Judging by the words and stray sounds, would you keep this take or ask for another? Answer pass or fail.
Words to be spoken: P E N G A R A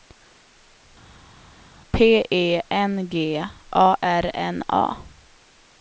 fail